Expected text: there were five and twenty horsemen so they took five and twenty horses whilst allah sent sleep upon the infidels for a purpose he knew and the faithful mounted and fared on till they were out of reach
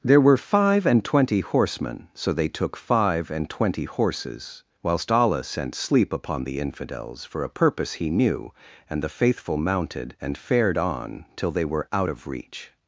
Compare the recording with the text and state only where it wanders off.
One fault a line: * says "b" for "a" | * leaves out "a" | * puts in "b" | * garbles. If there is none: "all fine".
all fine